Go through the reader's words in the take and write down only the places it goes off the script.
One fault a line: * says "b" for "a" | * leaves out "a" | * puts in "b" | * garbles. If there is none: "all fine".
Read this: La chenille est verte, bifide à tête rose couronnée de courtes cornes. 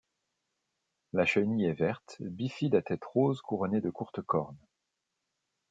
all fine